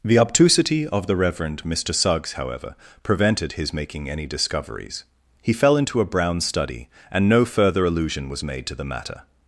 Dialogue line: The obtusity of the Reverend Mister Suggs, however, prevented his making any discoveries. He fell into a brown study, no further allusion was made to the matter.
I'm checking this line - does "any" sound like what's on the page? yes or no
yes